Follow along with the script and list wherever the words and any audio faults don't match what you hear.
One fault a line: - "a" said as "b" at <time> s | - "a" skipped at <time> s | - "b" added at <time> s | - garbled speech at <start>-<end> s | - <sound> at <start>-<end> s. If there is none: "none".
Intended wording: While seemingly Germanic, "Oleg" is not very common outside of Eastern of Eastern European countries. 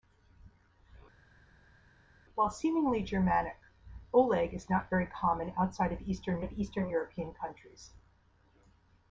none